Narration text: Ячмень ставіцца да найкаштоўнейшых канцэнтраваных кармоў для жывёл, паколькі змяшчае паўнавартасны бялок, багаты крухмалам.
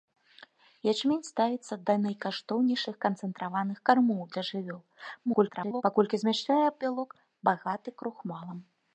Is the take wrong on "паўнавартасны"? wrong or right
wrong